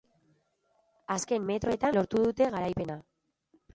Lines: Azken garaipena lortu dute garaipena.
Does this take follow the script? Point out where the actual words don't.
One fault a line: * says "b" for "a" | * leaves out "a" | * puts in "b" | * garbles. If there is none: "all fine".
* says "metroetan" for "garaipena"